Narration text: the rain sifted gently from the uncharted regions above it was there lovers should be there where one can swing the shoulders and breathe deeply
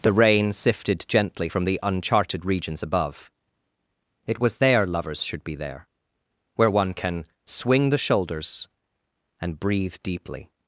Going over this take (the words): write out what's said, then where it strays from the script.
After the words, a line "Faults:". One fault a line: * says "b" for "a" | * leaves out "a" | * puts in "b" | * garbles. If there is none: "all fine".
the rain sifted gently from the uncharted regions above it was there lovers should be there where one can swing the shoulders and breathe deeply
Faults:
all fine